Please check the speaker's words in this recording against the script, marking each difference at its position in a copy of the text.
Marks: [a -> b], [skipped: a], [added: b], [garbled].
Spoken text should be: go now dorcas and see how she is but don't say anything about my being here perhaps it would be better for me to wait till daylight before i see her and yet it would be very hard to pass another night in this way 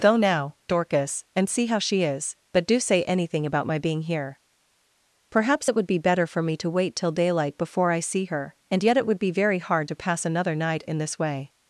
go now dorcas and see how she is but [don't -> do] say anything about my being here perhaps it would be better for me to wait till daylight before i see her and yet it would be very hard to pass another night in this way